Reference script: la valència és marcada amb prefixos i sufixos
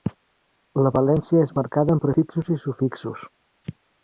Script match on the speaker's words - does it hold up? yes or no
yes